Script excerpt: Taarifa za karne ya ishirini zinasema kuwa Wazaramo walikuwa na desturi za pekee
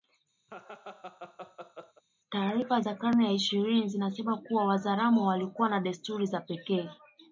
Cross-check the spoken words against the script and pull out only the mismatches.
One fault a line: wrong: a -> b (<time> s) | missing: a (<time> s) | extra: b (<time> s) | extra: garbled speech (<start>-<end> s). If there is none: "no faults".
no faults